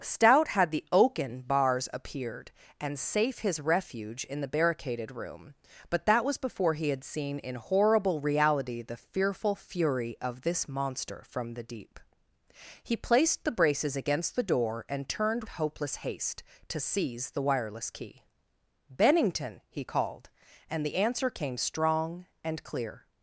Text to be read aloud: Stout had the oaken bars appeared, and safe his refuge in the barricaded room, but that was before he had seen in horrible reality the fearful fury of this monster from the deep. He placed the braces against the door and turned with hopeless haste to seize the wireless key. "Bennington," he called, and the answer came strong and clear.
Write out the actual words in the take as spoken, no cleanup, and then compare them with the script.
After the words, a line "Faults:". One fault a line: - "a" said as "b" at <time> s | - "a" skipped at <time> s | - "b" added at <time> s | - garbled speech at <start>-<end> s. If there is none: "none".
Stout had the oaken bars appeared, and safe his refuge in the barricaded room, but that was before he had seen in horrible reality the fearful fury of this monster from the deep. He placed the braces against the door and turned hopeless haste to seize the wireless key. "Bennington," he called, and the answer came strong and clear.
Faults:
- "with" skipped at 15.4 s